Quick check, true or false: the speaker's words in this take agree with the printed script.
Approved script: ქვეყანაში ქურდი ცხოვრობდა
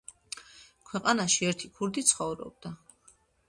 false